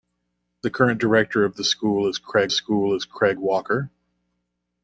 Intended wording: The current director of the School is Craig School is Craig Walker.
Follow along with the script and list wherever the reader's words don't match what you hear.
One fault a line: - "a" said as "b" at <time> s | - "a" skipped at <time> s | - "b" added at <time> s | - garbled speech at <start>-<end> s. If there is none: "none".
none